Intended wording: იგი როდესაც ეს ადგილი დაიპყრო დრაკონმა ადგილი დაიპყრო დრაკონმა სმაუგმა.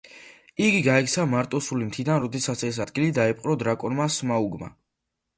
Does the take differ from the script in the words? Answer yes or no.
yes